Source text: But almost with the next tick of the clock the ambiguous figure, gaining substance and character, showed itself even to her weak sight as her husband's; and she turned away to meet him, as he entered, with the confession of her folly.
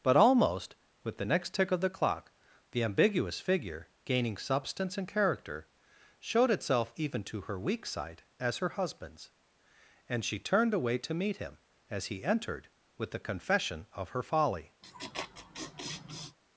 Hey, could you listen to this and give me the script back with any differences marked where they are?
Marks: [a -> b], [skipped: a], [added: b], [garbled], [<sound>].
But almost with the next tick of the clock the ambiguous figure, gaining substance and character, showed itself even to her weak sight as her husband's; and she turned away to meet him, as he entered, with the confession of her folly. [laugh]